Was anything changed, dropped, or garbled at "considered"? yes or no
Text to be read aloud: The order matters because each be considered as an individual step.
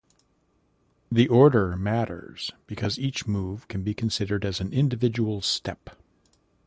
no